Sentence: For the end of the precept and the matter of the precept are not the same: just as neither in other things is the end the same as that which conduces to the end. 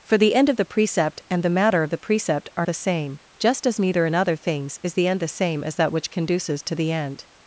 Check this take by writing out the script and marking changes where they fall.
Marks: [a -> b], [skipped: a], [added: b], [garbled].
For the end of the precept and the matter of the precept are [skipped: not] the same: just as neither in other things is the end the same as that which conduces to the end.